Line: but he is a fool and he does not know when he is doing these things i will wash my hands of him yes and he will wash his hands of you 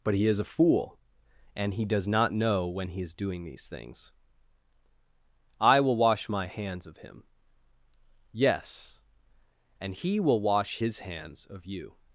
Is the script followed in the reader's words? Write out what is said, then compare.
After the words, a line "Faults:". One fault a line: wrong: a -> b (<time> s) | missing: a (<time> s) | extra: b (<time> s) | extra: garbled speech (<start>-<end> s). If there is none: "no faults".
but he is a fool and he does not know when he is doing these things i will wash my hands of him yes and he will wash his hands of you
Faults:
no faults